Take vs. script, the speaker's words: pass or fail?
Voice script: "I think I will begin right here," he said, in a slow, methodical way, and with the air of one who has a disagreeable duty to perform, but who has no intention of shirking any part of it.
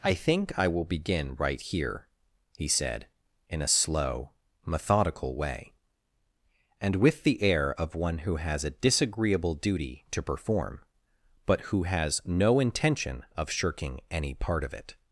pass